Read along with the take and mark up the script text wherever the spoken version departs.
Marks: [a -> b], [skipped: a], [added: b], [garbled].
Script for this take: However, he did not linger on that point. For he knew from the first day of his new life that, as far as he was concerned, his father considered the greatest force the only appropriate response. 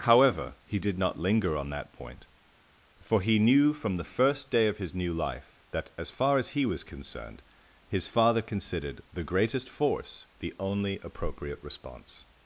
However, he did not linger on that point. For he knew from the first day of his new life that, as far as he was concerned, his father considered the greatest force the only appropriate response.